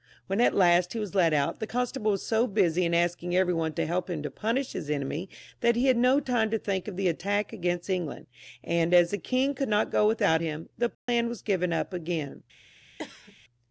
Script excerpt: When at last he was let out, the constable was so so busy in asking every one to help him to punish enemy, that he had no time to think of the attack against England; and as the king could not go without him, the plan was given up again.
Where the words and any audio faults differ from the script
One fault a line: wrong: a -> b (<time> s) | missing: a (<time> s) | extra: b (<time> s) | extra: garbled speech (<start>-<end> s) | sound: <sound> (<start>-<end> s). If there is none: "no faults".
missing: so (2.5 s)
extra: his (4.7 s)
sound: dropout (10.9-11.1 s)
sound: cough (13.0-13.4 s)